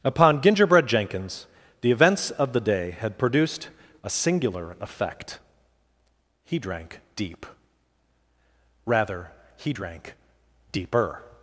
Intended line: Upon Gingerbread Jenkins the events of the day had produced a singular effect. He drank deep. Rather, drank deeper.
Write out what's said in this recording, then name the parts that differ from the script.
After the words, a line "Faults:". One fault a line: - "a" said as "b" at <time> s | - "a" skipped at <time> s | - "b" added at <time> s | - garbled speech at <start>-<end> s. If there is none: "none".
Upon Gingerbread Jenkins the events of the day had produced a singular effect. He drank deep. Rather, he drank deeper.
Faults:
- "he" added at 9.6 s